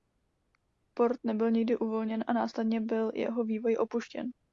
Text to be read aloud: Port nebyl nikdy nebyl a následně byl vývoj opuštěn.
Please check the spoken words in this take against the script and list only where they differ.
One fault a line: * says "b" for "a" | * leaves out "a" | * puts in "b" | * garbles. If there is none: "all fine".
* says "uvolněn" for "nebyl"
* puts in "jeho"